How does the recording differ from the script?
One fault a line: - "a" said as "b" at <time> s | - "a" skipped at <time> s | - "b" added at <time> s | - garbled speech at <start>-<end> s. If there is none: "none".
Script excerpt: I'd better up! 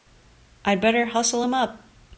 - "hustle him" added at 1.1 s